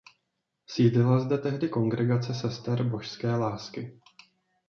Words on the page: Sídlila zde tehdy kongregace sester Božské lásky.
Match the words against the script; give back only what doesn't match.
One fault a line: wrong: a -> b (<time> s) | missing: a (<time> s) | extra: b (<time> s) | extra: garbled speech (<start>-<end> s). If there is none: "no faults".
no faults